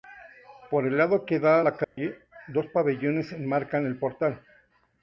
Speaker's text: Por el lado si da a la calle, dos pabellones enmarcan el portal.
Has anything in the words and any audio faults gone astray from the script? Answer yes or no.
yes